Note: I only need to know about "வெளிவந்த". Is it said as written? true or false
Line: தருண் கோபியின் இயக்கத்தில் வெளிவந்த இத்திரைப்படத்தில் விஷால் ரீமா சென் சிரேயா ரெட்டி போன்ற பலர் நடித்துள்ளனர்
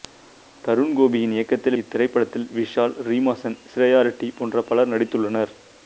false